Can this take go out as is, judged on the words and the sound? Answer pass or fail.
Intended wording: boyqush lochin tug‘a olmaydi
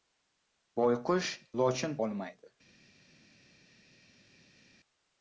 fail